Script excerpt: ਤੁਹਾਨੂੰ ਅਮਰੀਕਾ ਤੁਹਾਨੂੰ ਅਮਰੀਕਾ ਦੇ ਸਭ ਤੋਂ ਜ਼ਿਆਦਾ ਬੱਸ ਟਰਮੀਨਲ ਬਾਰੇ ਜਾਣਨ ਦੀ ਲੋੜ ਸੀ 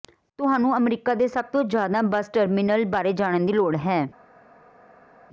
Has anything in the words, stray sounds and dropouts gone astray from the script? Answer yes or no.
yes